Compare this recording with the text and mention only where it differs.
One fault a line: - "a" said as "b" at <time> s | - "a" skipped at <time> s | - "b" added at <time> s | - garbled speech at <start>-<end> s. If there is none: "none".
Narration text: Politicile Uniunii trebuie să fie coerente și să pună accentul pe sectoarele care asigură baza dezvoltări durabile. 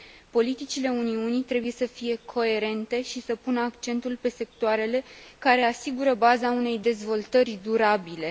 - "unei" added at 6.5 s